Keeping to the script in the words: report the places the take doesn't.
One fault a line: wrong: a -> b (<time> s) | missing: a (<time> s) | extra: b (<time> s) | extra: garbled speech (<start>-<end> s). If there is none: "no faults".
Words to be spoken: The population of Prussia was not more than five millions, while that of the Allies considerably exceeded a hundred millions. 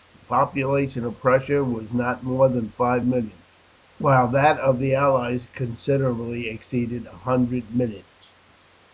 no faults